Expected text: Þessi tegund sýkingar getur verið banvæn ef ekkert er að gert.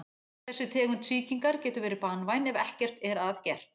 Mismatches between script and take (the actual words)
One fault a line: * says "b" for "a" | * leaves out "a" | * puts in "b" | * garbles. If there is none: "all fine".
all fine